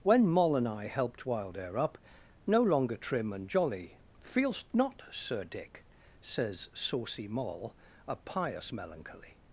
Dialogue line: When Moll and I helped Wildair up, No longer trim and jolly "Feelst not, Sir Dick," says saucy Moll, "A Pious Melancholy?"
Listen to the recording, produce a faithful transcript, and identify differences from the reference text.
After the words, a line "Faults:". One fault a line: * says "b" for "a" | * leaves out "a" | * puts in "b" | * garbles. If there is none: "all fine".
When Moll and I helped Wildair up, No longer trim and jolly "Feelst not, Sir Dick," says saucy Moll, "A Pious Melancholy?"
Faults:
all fine